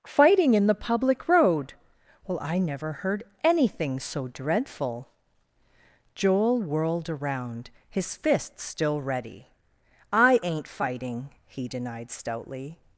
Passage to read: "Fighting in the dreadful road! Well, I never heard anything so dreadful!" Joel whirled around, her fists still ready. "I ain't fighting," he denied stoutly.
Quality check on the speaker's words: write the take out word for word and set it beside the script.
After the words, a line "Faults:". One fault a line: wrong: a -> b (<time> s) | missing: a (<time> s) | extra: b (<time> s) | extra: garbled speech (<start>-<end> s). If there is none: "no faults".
"Fighting in the public road! Well, I never heard anything so dreadful!" Joel whirled around, his fists still ready. "I ain't fighting," he denied stoutly.
Faults:
wrong: dreadful -> public (0.8 s)
wrong: her -> his (7.9 s)